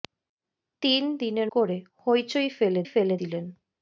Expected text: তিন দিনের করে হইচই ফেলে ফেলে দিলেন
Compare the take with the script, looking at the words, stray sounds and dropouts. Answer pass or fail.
pass